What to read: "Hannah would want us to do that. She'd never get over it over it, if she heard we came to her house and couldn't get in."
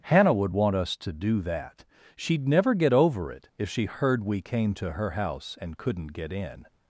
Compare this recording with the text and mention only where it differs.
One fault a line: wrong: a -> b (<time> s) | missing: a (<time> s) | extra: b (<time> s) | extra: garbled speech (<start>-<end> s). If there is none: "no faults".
missing: over it (3.5 s)